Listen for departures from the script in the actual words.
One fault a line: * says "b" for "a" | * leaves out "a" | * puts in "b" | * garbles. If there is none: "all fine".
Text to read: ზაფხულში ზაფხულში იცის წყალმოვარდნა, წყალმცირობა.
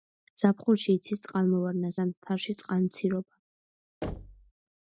* leaves out "ზაფხულში"
* puts in "ზამთარში"